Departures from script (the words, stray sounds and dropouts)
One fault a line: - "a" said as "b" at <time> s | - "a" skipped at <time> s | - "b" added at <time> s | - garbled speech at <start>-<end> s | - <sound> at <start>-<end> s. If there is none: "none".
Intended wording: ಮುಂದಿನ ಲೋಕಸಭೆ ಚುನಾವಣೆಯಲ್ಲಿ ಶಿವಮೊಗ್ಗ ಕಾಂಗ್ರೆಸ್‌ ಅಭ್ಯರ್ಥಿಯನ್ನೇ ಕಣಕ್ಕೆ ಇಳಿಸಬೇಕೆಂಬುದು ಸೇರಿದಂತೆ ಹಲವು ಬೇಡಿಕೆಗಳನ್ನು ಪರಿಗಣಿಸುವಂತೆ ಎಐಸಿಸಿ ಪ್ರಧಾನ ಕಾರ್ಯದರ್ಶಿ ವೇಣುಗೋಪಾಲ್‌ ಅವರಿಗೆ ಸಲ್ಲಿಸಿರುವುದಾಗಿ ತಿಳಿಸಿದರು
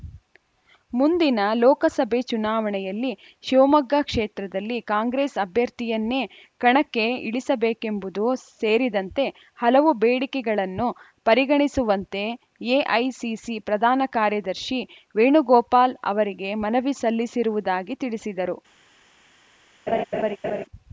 - "ಕ್ಷೇತ್ರದಲ್ಲಿ" added at 4.0 s
- "ಮನವಿ" added at 16.6 s
- laugh at 19.9-20.6 s